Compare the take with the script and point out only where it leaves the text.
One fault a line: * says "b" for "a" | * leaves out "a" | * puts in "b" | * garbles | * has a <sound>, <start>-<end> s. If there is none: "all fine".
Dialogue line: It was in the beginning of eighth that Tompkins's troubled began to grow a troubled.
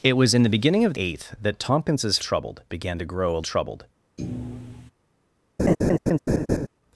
* has a thud, 4.2-4.9 s
* has a laugh, 5.6-6.7 s